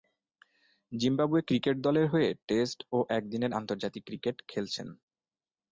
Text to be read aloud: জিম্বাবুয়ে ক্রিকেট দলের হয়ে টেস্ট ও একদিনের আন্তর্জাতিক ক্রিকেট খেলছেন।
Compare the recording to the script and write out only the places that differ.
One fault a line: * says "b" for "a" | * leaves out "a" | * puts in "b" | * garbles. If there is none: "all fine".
all fine